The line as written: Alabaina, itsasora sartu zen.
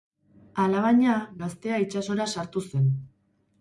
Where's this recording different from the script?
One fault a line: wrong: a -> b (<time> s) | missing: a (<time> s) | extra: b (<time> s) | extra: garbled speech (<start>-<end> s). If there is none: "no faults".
extra: gaztea (1.4 s)